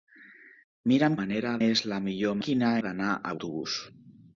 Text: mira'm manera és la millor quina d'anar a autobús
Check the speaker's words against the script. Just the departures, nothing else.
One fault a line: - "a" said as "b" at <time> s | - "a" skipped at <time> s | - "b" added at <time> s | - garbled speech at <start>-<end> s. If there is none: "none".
none